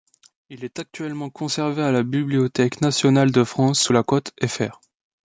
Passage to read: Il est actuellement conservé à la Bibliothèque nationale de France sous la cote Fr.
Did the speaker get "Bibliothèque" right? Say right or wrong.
right